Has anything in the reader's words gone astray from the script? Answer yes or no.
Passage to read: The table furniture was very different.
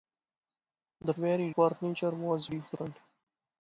yes